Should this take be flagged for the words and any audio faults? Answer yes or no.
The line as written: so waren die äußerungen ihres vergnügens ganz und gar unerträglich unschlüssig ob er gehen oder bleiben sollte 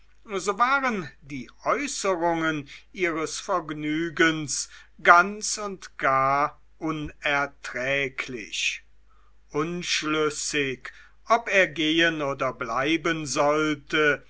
no